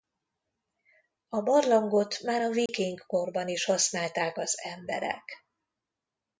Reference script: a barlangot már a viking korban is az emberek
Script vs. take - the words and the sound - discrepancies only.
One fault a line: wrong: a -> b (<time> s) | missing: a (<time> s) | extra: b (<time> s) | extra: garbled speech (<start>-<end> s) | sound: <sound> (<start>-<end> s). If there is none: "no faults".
sound: dropout (2.7-2.7 s)
extra: használták (3.7 s)